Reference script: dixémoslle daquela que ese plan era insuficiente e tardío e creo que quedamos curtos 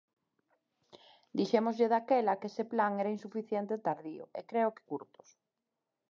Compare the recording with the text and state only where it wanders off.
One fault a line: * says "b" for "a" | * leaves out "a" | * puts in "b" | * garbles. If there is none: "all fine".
* leaves out "quedamos"